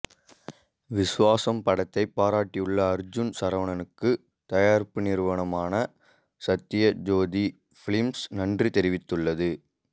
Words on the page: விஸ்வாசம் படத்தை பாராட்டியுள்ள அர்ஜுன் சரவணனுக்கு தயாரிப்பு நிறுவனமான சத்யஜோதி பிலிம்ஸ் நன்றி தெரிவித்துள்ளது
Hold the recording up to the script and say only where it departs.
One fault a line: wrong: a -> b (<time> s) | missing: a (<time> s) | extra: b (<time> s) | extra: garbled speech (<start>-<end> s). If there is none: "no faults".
no faults